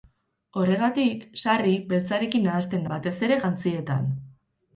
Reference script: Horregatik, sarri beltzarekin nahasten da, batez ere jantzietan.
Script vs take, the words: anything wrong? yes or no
yes